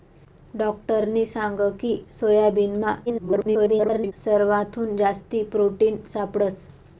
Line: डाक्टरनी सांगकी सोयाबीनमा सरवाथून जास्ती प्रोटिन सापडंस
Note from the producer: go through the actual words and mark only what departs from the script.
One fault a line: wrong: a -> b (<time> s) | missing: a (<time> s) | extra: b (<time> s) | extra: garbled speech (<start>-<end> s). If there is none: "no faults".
extra: garbled speech (3.1-4.1 s)